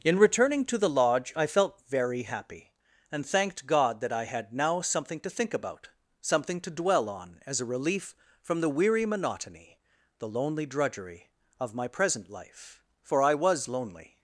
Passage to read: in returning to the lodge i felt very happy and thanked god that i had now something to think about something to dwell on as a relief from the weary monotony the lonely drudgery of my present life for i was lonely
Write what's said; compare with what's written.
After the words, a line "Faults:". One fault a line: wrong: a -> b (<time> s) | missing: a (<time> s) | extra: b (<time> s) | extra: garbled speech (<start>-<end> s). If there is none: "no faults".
in returning to the lodge i felt very happy and thanked god that i had now something to think about something to dwell on as a relief from the weary monotony the lonely drudgery of my present life for i was lonely
Faults:
no faults